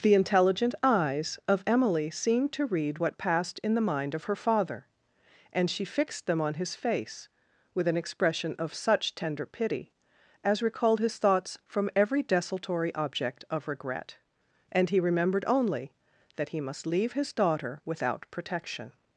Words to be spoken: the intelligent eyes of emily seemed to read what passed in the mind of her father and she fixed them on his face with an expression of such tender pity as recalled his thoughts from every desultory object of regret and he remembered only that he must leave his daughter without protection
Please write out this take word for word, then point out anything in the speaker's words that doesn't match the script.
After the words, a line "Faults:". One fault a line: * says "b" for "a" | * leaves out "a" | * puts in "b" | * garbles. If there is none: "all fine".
the intelligent eyes of emily seemed to read what passed in the mind of her father and she fixed them on his face with an expression of such tender pity as recalled his thoughts from every desultory object of regret and he remembered only that he must leave his daughter without protection
Faults:
all fine